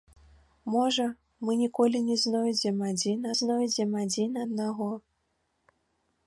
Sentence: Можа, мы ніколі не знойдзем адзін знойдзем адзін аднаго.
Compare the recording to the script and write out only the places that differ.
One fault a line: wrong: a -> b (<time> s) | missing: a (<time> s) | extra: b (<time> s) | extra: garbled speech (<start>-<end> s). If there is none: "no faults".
no faults